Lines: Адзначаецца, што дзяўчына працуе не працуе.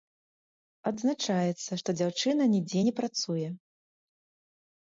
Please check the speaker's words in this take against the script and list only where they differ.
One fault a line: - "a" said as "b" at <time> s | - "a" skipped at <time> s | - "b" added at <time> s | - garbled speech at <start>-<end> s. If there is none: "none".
- "працуе" said as "нідзе" at 2.5 s